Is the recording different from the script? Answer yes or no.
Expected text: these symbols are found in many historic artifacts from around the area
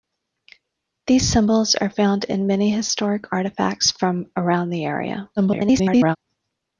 yes